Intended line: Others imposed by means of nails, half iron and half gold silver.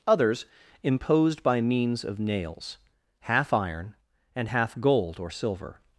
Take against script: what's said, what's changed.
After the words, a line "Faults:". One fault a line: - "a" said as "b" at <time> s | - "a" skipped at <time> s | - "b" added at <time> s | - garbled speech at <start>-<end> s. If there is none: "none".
Others imposed by means of nails, half iron and half gold or silver.
Faults:
- "or" added at 5.2 s